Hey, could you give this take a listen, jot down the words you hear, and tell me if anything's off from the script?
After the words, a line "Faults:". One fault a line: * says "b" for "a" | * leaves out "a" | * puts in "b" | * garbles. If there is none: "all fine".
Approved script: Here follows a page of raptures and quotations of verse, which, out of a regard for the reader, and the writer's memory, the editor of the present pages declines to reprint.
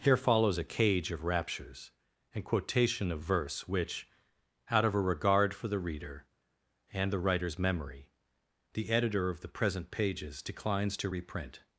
Here follows a cage of raptures and quotation of verse, which, out of a regard for the reader, and the writer's memory, the editor of the present pages declines to reprint.
Faults:
* says "cage" for "page"
* says "quotation" for "quotations"